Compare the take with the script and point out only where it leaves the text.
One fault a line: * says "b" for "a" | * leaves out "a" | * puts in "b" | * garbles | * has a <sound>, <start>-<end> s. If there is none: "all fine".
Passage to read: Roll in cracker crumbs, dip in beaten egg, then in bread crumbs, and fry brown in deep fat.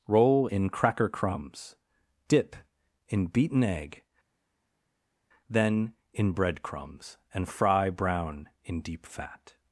all fine